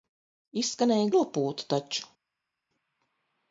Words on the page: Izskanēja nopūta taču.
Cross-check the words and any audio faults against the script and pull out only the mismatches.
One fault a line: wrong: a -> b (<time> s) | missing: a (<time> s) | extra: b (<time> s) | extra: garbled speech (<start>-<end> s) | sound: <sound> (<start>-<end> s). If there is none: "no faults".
no faults